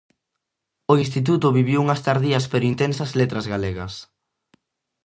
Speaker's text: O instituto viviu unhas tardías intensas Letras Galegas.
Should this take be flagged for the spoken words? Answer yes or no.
yes